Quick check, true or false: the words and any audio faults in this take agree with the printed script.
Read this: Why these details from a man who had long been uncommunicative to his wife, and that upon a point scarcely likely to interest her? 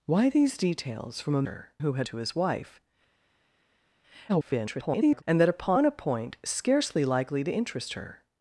false